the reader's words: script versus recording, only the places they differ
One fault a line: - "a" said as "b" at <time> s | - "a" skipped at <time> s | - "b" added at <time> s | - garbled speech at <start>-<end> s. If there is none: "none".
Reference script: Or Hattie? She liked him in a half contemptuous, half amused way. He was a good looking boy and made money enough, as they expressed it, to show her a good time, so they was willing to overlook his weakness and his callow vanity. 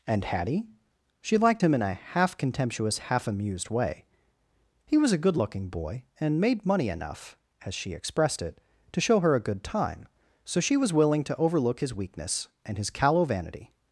- "Or" said as "And" at 0.1 s
- "they" said as "she" at 7.7 s
- "they" said as "she" at 10.6 s